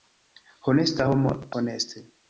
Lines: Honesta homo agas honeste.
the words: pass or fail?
fail